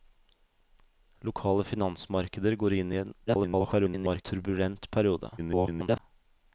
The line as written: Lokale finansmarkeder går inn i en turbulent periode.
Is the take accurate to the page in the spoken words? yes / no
no